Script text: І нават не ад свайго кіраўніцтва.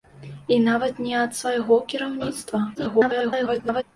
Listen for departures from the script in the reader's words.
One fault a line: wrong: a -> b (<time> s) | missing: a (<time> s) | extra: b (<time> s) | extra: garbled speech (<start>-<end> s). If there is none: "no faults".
extra: garbled speech (2.8-3.8 s)